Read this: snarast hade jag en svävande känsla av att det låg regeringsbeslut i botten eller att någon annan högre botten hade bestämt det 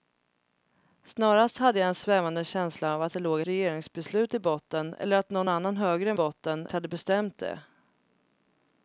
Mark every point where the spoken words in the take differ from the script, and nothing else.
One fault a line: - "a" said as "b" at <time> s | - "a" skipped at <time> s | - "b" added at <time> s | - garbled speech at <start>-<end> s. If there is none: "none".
none